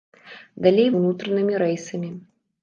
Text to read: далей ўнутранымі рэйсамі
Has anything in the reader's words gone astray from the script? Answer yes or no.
no